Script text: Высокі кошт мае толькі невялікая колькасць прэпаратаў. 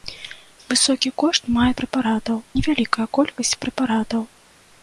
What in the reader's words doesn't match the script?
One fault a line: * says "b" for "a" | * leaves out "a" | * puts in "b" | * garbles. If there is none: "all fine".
* says "прэпаратаў" for "толькі"